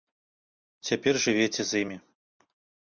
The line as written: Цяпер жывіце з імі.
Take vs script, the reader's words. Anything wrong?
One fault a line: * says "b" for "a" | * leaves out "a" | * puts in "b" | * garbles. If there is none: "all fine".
all fine